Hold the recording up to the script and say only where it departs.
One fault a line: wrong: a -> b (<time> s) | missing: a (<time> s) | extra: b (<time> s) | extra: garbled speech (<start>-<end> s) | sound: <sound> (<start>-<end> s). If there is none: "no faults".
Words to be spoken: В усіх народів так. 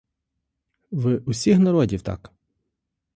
no faults